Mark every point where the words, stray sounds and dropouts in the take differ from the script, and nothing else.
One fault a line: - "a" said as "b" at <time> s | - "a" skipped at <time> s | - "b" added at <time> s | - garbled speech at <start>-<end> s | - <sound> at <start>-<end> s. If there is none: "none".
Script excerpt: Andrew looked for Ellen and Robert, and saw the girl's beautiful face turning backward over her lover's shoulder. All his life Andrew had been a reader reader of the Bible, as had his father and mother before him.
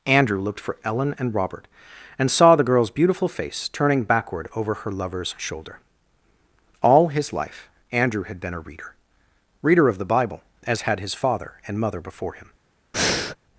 - breath at 12.9-13.4 s